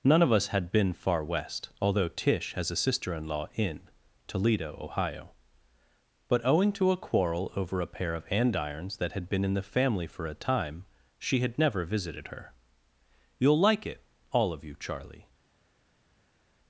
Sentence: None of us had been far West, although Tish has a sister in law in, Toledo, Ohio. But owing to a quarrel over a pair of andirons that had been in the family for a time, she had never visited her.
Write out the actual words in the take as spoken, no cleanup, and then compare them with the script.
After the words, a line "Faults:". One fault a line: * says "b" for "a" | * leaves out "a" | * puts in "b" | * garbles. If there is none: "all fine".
None of us had been far West, although Tish has a sister in law in, Toledo, Ohio. But owing to a quarrel over a pair of andirons that had been in the family for a time, she had never visited her. "You'll like it, all of you," Charlie
Faults:
* puts in "You'll like it all of you Charlie"